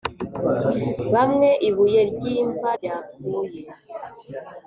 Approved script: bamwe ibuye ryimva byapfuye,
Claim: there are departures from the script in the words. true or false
false